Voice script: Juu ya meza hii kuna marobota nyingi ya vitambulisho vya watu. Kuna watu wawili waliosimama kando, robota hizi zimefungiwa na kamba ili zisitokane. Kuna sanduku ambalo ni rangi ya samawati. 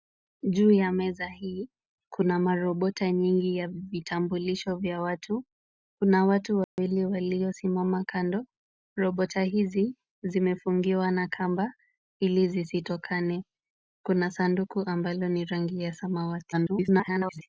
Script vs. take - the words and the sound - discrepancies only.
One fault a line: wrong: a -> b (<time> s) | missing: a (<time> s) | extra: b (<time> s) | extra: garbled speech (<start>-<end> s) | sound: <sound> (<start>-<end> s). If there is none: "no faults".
sound: dropout (6.6-6.8 s)
extra: garbled speech (16.5-17.4 s)